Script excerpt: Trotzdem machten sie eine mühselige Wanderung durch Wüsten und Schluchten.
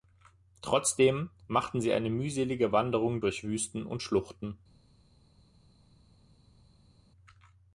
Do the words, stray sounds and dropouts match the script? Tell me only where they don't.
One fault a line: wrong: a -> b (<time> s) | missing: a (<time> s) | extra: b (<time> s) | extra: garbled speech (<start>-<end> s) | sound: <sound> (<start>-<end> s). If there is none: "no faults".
no faults